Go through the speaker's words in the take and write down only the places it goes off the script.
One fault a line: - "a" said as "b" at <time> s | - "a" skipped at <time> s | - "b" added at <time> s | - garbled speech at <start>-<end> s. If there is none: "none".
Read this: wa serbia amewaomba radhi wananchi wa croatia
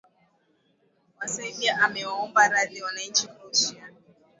- "wa" skipped at 3.3 s